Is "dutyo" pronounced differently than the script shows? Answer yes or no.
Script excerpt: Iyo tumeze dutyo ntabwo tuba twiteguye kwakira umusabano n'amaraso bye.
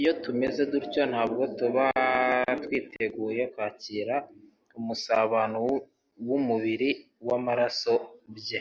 no